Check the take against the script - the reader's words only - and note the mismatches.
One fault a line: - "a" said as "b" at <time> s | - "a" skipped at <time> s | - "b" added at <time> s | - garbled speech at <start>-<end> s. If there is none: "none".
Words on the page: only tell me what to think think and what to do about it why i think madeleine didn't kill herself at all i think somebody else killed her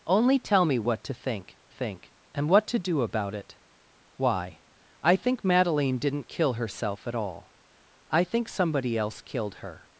none